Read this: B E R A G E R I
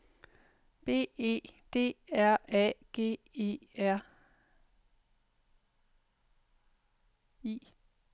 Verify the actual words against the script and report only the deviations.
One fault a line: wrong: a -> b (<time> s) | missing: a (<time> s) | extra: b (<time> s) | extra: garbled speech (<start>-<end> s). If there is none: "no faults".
extra: D (1.7 s)